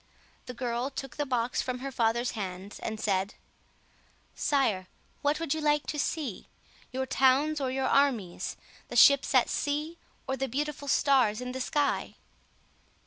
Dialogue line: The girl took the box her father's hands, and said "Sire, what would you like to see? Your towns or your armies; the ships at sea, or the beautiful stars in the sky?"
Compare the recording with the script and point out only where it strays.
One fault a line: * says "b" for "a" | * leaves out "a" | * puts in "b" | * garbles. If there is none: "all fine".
* puts in "from"